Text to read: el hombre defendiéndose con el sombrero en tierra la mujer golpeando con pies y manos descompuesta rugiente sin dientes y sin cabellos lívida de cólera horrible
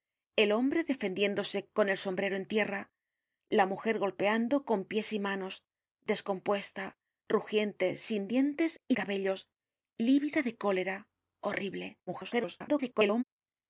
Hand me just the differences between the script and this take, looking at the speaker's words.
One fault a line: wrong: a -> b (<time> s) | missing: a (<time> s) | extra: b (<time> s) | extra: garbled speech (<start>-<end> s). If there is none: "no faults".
missing: sin (8.9 s)
extra: garbled speech (12.1-13.2 s)